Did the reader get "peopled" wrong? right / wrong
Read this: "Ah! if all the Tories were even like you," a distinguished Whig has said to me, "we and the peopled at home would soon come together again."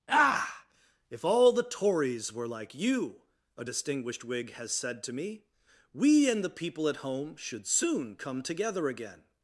wrong